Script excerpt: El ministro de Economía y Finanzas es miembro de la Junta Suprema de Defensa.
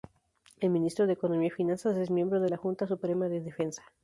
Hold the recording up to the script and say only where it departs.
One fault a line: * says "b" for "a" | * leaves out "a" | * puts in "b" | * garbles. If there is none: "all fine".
all fine